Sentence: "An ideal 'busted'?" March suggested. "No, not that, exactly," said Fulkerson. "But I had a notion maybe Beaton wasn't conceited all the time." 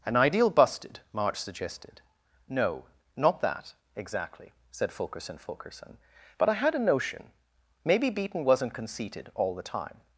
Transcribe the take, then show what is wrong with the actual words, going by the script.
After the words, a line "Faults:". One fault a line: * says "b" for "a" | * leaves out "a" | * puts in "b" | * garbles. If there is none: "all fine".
"An ideal 'busted'?" March suggested. "No, not that, exactly," said Fulkerson Fulkerson. "But I had a notion maybe Beaton wasn't conceited all the time."
Faults:
* puts in "Fulkerson"